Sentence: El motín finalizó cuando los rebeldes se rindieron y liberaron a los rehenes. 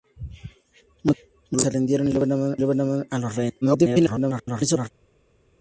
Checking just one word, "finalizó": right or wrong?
wrong